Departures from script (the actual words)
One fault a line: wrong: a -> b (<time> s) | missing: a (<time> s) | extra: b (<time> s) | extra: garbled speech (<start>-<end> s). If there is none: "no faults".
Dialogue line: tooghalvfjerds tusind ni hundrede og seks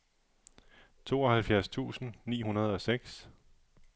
no faults